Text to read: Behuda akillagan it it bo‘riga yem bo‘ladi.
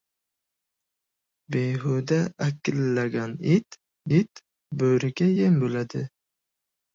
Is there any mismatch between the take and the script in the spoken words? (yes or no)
no